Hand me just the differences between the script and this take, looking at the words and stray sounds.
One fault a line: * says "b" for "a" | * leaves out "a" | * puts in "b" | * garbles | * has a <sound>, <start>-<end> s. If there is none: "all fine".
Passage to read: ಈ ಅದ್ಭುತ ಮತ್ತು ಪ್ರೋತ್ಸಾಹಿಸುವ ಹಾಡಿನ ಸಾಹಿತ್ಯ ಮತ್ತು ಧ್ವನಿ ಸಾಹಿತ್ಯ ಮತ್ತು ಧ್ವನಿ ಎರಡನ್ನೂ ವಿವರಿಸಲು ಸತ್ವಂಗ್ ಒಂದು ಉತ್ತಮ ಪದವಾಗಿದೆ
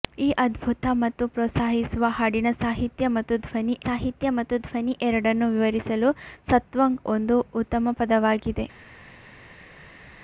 all fine